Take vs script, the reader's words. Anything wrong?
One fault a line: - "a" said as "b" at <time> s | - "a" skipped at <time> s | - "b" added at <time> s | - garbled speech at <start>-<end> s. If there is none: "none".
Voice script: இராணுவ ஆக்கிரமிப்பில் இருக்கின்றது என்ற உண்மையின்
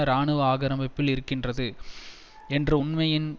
none